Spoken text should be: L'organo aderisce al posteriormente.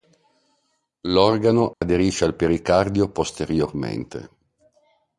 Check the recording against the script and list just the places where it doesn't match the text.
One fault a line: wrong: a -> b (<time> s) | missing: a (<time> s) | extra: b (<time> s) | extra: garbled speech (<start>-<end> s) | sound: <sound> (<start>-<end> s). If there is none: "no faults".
sound: dropout (1.7-1.8 s)
extra: pericardio (2.3 s)